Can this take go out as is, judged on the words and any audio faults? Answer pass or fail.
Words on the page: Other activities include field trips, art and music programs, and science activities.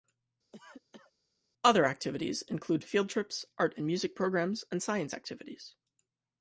fail